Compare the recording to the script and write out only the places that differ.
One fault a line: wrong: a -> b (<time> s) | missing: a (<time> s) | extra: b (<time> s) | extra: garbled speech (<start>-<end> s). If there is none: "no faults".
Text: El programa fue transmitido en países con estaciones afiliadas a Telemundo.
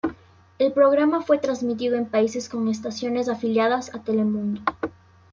no faults